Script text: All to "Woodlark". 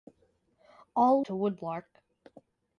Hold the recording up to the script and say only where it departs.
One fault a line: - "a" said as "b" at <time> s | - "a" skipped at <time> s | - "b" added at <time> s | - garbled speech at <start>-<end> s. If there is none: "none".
none